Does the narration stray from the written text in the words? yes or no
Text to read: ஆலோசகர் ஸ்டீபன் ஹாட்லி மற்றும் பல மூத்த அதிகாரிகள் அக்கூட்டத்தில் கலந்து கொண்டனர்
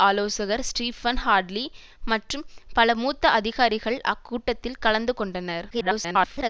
yes